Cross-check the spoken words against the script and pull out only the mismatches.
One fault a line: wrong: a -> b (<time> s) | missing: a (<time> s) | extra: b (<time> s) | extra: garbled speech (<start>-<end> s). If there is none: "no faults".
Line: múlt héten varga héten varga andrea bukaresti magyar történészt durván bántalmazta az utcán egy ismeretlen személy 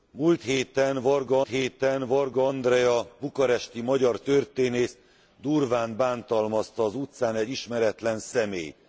no faults